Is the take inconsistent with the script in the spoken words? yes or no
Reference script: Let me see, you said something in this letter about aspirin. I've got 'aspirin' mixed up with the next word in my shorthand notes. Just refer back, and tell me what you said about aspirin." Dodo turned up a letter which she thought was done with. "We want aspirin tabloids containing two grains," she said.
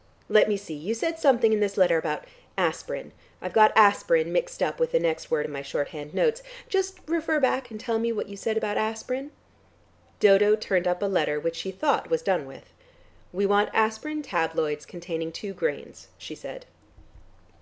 no